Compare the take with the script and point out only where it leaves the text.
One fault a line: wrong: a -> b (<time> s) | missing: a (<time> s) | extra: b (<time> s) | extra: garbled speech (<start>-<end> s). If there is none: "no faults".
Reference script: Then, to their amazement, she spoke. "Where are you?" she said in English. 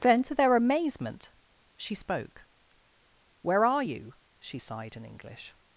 wrong: said -> sighed (4.6 s)